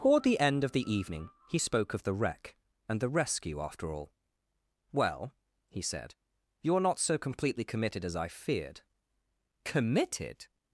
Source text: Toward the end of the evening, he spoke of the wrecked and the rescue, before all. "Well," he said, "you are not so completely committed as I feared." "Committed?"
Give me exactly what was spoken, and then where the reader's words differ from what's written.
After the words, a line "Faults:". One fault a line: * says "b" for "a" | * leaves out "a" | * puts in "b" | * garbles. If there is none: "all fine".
Toward the end of the evening, he spoke of the wreck and the rescue, after all. "Well," he said, "you are not so completely committed as I feared." "Committed?"
Faults:
* says "wreck" for "wrecked"
* says "after" for "before"